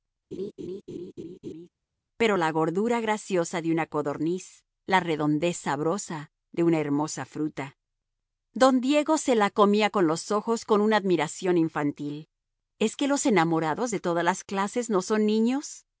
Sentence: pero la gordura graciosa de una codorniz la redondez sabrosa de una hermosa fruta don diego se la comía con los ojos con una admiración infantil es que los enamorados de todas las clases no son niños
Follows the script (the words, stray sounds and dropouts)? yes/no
no